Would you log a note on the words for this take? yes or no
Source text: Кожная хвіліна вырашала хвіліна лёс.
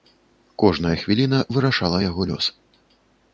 yes